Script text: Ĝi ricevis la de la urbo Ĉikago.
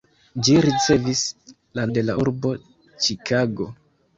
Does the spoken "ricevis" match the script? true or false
true